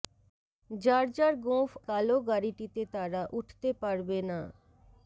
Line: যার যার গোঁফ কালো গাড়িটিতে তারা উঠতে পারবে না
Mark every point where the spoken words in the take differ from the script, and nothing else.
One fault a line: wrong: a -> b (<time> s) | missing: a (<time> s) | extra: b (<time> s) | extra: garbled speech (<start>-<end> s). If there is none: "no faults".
no faults